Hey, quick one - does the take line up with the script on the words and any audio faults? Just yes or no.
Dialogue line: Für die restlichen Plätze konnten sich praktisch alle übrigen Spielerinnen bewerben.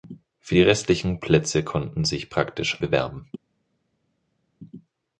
no